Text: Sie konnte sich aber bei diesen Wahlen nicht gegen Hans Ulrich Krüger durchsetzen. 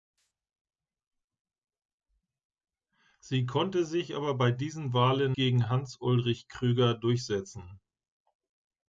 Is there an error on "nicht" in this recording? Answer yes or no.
yes